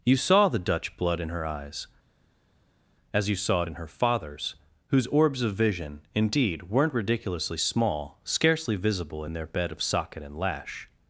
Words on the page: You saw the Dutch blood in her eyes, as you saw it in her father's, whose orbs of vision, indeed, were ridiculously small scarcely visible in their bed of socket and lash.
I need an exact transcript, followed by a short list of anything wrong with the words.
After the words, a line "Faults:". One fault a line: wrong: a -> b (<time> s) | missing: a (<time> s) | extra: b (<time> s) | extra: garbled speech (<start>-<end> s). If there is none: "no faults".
You saw the Dutch blood in her eyes, as you saw it in her father's, whose orbs of vision, indeed, weren't ridiculously small scarcely visible in their bed of socket and lash.
Faults:
wrong: were -> weren't (6.7 s)